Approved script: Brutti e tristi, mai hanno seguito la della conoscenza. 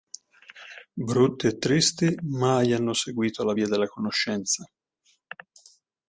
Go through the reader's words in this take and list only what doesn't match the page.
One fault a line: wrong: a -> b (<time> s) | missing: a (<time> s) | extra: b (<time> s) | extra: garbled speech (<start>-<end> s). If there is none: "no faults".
extra: via (3.5 s)